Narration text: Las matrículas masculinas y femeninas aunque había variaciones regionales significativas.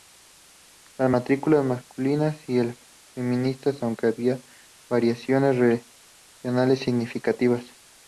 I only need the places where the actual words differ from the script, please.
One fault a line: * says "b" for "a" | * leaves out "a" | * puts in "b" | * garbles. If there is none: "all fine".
all fine